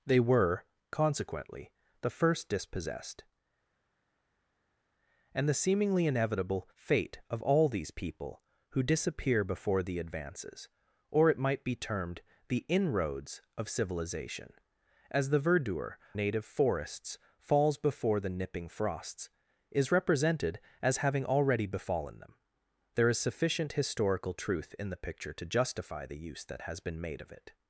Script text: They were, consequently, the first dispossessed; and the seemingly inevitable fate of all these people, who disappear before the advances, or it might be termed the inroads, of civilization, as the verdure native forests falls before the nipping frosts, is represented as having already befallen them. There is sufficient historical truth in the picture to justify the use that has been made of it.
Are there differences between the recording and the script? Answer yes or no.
no